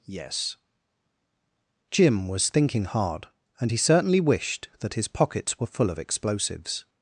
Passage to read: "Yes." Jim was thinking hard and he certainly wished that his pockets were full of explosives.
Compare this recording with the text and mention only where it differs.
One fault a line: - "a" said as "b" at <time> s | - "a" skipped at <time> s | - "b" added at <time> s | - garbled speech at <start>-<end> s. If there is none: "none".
none